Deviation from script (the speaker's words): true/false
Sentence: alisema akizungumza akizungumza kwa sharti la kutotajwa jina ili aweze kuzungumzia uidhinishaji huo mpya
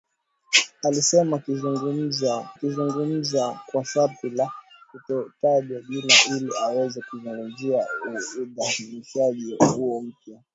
false